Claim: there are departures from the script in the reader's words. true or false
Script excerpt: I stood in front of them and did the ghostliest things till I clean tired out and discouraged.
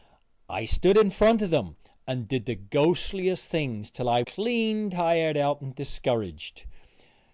false